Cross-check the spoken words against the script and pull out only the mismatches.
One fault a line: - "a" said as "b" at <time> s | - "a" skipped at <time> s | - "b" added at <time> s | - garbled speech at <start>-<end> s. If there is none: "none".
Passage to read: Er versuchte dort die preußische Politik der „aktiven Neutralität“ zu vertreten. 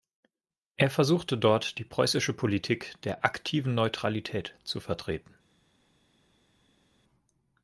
none